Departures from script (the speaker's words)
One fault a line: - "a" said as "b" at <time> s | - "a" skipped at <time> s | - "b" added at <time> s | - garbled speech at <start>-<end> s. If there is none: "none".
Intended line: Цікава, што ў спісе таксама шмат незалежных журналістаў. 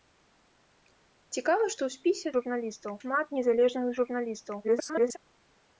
- "таксама" said as "журналістаў" at 2.4 s
- garbled speech at 4.6-5.2 s